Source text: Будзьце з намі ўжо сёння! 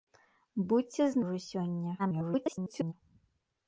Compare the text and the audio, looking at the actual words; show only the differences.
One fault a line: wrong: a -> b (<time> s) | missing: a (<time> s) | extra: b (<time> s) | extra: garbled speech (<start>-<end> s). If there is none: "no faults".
missing: намі (1.2 s)
extra: garbled speech (2.0-2.9 s)